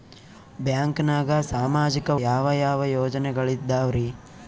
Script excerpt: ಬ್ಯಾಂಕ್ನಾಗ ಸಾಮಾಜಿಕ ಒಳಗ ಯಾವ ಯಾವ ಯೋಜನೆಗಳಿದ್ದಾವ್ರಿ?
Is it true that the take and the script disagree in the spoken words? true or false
true